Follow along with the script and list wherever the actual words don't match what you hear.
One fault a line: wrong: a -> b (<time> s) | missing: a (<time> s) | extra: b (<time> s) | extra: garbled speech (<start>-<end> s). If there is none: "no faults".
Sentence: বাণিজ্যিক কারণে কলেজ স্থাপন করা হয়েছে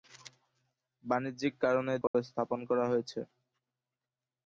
no faults